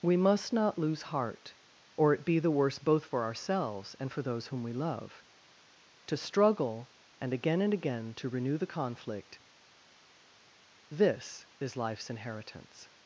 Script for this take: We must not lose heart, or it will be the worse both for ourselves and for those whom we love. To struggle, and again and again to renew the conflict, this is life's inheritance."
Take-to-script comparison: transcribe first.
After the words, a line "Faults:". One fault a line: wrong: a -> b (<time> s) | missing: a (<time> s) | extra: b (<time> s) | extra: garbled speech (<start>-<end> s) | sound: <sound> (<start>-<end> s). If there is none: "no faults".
We must not lose heart, or it be the worse both for ourselves and for those whom we love. To struggle, and again and again to renew the conflict, this is life's inheritance."
Faults:
missing: will (2.2 s)